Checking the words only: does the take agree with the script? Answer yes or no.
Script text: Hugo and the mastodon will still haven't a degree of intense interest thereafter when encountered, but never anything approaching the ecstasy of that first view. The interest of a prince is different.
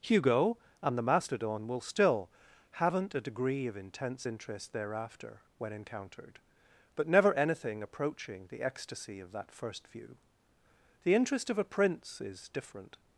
yes